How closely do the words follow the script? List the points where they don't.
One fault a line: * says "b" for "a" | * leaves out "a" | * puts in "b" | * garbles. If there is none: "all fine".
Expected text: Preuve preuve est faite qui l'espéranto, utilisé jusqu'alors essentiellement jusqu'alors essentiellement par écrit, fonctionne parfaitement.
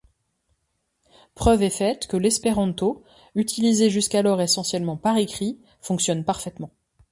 * leaves out "preuve"
* says "que" for "qui"
* leaves out "jusqu'alors essentiellement"